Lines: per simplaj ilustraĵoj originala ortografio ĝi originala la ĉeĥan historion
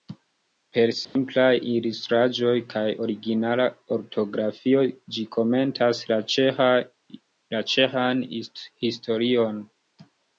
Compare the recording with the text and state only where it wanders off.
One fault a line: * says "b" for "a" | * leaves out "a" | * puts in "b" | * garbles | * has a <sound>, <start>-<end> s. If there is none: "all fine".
* has a dropout, 1.0-1.2 s
* puts in "kaj"
* says "komentas" for "originala"